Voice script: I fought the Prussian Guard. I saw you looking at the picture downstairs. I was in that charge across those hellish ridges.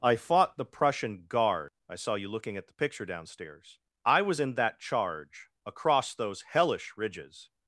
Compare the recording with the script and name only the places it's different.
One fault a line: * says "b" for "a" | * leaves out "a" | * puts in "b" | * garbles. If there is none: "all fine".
all fine